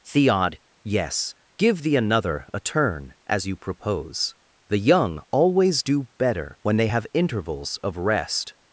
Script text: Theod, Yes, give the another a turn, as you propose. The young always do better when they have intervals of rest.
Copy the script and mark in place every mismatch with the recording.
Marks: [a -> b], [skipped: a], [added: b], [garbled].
Theod, Yes, give the another a turn, as you propose. The young always do better when they have intervals of rest.